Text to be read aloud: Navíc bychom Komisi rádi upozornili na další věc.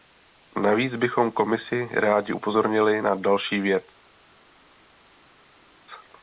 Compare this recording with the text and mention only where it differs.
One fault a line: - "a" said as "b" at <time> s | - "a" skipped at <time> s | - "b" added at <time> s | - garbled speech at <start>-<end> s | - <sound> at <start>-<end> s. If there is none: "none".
none